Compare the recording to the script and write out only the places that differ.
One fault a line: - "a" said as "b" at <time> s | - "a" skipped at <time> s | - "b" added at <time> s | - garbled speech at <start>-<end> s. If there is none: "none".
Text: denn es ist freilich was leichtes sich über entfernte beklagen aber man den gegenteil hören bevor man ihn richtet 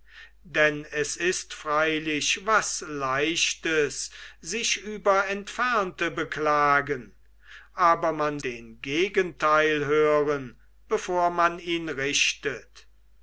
none